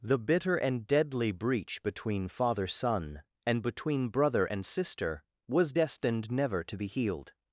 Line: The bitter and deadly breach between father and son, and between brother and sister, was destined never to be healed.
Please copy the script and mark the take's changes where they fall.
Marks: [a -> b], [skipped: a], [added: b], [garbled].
The bitter and deadly breach between father [skipped: and] son, and between brother and sister, was destined never to be healed.